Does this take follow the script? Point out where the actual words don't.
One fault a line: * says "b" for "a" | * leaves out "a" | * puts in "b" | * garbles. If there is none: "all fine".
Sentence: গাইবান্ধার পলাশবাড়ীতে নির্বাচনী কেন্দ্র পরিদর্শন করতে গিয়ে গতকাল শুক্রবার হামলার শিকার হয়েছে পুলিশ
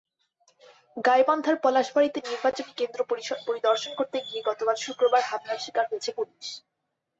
all fine